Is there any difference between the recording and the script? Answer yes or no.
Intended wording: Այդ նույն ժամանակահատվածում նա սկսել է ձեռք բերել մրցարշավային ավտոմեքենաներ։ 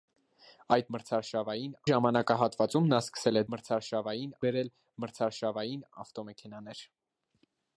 yes